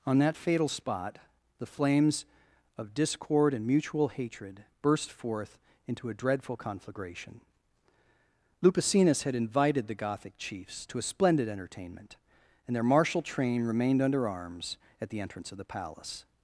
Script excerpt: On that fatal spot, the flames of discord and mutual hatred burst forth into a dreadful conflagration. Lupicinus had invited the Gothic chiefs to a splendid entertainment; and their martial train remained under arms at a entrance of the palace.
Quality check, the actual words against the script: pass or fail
fail